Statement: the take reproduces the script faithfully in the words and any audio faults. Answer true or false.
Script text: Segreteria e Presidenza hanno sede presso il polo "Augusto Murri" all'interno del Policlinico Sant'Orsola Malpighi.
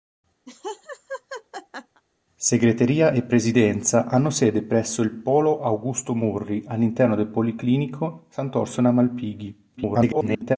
false